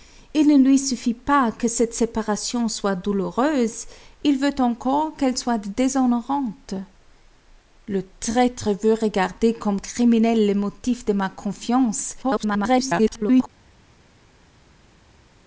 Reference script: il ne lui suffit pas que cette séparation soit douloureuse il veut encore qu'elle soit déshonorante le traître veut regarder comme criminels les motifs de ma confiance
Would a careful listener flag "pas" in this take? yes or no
no